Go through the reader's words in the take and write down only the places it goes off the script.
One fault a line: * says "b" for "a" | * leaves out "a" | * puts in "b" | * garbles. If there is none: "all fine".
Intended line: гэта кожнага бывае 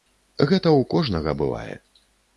* puts in "ў"